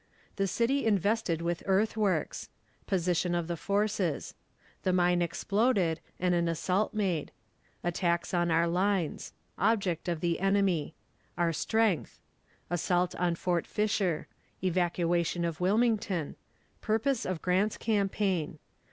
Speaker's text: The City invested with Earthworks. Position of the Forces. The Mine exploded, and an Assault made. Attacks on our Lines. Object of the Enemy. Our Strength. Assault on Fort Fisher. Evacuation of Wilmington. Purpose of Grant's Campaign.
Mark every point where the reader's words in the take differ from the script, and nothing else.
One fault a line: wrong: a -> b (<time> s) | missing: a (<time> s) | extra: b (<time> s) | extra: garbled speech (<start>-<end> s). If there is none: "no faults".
no faults